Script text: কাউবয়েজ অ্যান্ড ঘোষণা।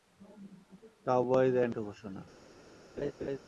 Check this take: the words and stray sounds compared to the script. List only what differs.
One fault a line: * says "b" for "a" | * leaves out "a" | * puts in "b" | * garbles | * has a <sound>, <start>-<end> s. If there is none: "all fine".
* has a laugh, 3.0-3.4 s